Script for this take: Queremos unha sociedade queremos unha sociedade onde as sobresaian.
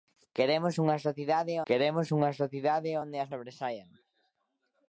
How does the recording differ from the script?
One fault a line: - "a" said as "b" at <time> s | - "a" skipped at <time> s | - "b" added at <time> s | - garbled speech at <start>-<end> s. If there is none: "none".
none